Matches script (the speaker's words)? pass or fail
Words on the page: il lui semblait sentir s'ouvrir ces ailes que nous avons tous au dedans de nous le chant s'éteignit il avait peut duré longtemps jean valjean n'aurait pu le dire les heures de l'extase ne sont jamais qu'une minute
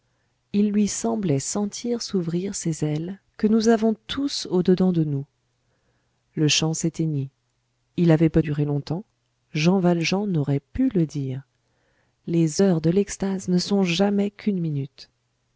pass